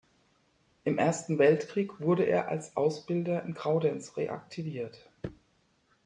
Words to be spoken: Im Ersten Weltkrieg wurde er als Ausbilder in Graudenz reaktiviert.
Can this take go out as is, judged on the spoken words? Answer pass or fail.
pass